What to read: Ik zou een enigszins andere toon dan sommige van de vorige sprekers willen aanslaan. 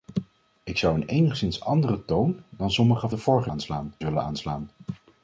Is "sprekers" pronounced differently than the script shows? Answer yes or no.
yes